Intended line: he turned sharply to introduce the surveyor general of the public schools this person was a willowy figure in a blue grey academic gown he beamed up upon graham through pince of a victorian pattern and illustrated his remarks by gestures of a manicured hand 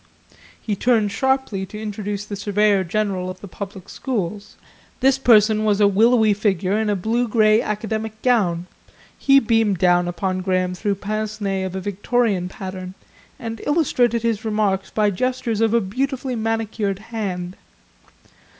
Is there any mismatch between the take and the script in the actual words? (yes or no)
yes